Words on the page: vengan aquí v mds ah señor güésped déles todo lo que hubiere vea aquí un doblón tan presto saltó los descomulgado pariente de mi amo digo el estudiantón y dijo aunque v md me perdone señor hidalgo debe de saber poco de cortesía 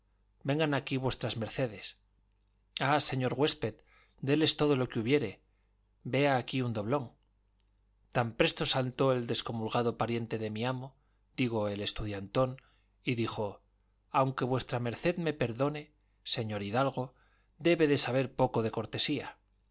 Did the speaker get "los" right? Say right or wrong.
wrong